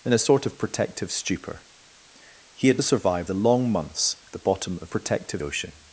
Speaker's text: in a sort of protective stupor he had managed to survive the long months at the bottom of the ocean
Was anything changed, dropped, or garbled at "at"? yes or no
yes